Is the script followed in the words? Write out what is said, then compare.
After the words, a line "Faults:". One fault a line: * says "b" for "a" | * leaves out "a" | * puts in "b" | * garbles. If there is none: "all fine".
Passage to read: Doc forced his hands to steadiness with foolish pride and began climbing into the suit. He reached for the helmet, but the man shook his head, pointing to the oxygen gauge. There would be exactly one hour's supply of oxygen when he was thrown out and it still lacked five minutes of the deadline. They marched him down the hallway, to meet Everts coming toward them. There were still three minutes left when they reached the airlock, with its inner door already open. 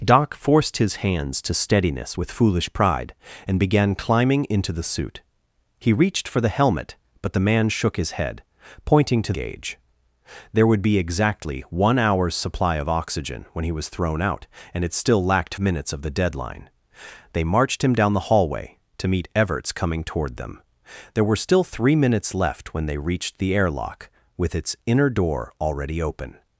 Doc forced his hands to steadiness with foolish pride and began climbing into the suit. He reached for the helmet, but the man shook his head, pointing to gauge. There would be exactly one hour's supply of oxygen when he was thrown out and it still lacked minutes of the deadline. They marched him down the hallway, to meet Everts coming toward them. There were still three minutes left when they reached the airlock, with its inner door already open.
Faults:
* leaves out "the oxygen"
* leaves out "five"